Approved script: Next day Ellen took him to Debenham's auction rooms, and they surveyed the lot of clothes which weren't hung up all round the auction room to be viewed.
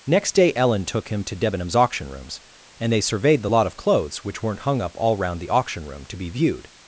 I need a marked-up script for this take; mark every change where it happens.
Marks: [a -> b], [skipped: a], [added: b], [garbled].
Next day Ellen took him to Debenham's auction rooms, and they surveyed the lot of clothes which weren't hung up all round the auction room to be viewed.